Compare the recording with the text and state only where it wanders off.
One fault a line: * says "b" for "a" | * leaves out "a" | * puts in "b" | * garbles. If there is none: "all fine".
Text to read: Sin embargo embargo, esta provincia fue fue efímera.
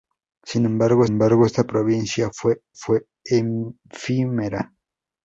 all fine